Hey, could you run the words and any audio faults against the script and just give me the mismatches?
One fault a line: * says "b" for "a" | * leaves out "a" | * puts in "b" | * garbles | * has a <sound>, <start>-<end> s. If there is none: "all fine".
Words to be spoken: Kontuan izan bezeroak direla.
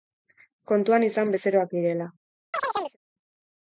* has a chirp, 2.5-3.0 s